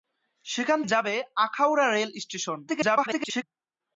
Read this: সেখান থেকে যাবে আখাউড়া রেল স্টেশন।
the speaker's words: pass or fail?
fail